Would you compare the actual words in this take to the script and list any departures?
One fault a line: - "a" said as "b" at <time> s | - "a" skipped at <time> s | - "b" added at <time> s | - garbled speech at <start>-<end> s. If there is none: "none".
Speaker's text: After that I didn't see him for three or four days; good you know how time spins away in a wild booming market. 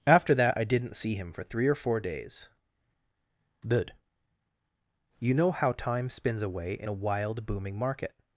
none